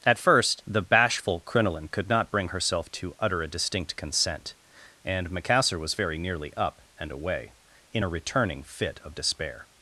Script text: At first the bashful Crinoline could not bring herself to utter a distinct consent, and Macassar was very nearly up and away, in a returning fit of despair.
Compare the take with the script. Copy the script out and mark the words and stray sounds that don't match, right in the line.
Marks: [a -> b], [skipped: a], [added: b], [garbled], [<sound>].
At first the bashful Crinoline could not bring herself to utter a distinct consent, and Macassar was very nearly up and away, in a returning fit of despair.